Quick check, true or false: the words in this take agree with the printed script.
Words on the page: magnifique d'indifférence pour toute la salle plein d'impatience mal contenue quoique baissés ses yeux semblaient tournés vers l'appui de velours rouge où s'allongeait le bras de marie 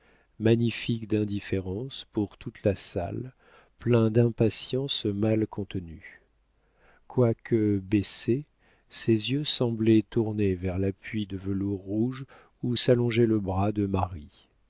true